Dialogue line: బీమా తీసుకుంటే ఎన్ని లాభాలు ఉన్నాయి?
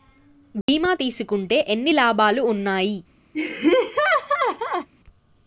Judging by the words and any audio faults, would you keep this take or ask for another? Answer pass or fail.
fail